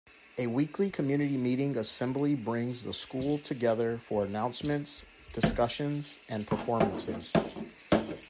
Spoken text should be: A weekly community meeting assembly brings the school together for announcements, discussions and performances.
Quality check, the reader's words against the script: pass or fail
pass